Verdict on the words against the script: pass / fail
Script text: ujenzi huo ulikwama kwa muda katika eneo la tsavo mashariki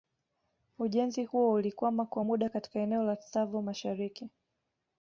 pass